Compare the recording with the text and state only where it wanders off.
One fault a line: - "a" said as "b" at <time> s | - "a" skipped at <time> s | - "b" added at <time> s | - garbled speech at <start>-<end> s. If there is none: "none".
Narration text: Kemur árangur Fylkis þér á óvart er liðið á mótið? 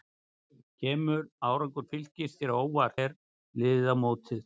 none